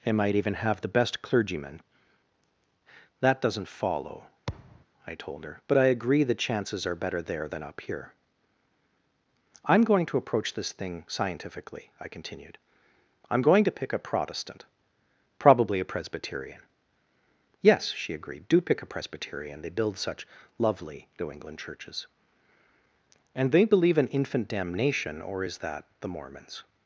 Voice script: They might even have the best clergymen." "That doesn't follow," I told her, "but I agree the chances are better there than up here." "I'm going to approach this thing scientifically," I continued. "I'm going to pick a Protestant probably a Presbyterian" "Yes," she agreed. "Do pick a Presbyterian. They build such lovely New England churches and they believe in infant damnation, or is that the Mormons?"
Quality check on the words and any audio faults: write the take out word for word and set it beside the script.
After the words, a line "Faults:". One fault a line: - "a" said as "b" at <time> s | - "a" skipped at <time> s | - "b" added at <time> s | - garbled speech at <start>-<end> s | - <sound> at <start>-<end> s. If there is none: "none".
They might even have the best clergymen." "That doesn't follow," I told her, "but I agree the chances are better there than up here." "I'm going to approach this thing scientifically," I continued. "I'm going to pick a Protestant probably a Presbyterian" "Yes," she agreed. "Do pick a Presbyterian. They build such lovely New England churches and they believe in infant damnation, or is that the Mormons?"
Faults:
- thud at 4.5-4.9 s